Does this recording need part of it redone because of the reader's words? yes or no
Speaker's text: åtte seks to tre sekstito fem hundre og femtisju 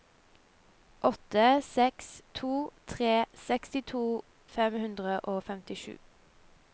no